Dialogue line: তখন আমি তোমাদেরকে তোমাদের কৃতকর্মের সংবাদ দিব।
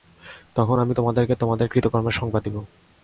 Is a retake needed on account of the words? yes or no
no